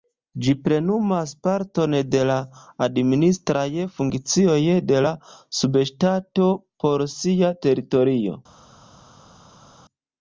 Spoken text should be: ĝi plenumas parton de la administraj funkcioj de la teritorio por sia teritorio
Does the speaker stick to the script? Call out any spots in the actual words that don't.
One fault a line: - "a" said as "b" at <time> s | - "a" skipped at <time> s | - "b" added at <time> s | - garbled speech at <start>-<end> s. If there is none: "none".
- "teritorio" said as "subŝtato" at 5.6 s